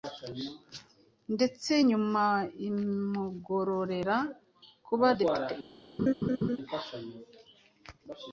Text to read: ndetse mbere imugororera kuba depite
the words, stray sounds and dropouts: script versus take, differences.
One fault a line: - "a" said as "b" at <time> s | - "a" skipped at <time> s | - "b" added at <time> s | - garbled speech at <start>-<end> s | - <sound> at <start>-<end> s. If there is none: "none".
- "mbere" said as "nyuma" at 1.9 s
- laugh at 6.0-6.6 s